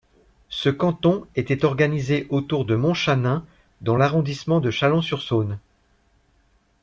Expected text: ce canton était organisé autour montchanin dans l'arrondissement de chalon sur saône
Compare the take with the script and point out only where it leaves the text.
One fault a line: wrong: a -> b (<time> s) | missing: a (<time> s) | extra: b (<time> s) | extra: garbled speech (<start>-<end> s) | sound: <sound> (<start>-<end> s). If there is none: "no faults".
extra: de (2.6 s)